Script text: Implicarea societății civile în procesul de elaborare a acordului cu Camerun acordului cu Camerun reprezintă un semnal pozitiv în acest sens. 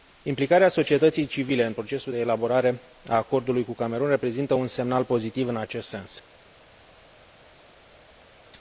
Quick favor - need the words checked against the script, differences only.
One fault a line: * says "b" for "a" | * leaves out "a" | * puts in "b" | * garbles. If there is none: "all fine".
* leaves out "acordului cu Camerun"